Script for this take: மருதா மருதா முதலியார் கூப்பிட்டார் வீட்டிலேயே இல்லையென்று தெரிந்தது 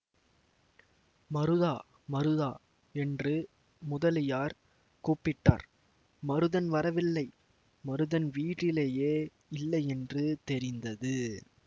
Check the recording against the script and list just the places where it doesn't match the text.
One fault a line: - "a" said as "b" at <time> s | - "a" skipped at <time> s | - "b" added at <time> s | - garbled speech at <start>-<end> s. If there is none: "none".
- "என்று" added at 3.0 s
- "மருதன் வரவில்லை மருதன்" added at 6.2 s